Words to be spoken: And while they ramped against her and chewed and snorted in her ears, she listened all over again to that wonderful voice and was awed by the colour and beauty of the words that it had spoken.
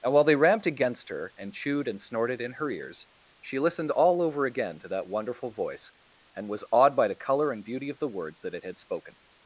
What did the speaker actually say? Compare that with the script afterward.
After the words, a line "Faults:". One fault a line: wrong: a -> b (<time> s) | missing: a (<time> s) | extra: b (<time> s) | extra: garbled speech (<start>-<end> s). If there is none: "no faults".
And while they ramped against her and chewed and snorted in her ears, she listened all over again to that wonderful voice and was awed by the colour and beauty of the words that it had spoken.
Faults:
no faults